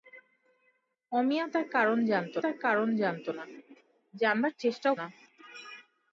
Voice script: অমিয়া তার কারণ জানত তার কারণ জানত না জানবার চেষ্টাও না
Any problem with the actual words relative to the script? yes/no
no